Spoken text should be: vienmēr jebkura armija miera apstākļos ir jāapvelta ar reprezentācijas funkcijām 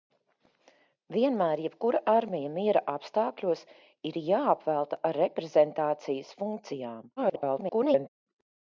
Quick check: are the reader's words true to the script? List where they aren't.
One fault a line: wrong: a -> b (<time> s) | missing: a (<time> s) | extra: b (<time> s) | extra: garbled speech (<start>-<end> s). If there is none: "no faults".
extra: garbled speech (7.2-8.1 s)